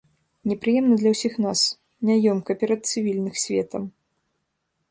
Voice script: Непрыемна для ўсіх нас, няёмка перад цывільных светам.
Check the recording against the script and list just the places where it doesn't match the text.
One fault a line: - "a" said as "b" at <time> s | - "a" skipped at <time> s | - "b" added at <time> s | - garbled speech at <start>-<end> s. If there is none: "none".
none